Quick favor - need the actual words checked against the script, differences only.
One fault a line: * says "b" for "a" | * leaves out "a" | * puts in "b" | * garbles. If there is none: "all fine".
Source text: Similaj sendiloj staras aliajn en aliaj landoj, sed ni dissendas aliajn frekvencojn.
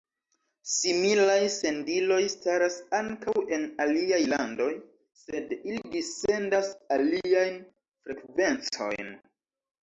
* says "ankaŭ" for "aliajn"
* says "ili" for "ni"